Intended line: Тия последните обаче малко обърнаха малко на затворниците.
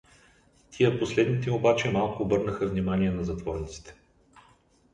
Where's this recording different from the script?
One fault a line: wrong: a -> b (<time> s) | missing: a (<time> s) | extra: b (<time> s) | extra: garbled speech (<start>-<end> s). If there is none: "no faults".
wrong: малко -> внимание (2.7 s)